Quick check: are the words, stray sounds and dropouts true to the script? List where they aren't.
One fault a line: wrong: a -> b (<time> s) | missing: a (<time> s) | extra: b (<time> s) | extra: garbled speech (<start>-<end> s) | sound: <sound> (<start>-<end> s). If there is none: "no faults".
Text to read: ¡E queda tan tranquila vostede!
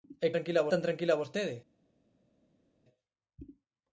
wrong: queda -> tranquila (0.3 s)